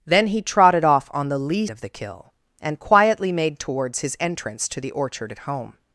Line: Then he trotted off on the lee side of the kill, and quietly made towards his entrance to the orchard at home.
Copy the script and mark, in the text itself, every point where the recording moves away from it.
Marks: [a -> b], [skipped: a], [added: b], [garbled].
Then he trotted off on the lee [skipped: side] of the kill, and quietly made towards his entrance to the orchard at home.